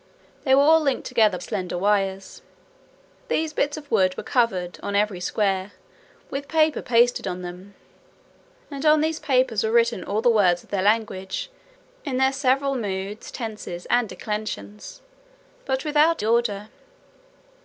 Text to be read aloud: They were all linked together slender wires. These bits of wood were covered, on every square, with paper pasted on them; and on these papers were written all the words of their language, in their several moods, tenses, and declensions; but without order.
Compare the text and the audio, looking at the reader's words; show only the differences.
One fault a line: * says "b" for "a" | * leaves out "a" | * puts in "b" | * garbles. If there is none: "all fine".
all fine